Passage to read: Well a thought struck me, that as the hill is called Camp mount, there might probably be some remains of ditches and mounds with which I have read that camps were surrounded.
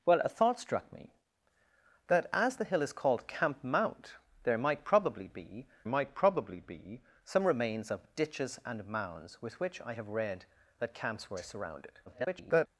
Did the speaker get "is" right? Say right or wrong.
right